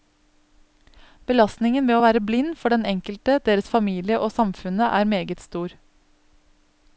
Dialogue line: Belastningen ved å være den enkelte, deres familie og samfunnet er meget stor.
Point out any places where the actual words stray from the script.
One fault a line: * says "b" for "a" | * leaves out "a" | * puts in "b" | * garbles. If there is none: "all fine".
* puts in "blind for"